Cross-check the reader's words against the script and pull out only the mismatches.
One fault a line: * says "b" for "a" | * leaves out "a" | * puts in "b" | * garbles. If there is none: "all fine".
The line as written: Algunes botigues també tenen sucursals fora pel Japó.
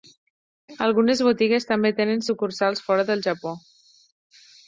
* says "del" for "pel"